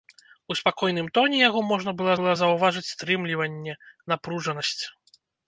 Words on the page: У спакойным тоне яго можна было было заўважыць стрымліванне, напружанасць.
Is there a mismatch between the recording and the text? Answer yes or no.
no